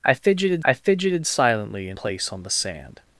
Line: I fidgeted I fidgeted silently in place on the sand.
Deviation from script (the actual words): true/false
false